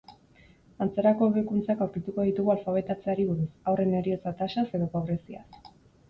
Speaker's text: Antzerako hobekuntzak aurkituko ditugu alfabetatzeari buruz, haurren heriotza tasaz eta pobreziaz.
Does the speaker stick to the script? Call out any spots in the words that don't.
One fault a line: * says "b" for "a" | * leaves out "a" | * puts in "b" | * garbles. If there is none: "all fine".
* says "edo" for "eta"